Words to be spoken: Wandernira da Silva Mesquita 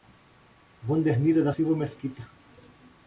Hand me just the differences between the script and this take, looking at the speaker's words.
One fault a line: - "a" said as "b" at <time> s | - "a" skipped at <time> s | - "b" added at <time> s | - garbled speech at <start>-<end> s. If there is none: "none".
none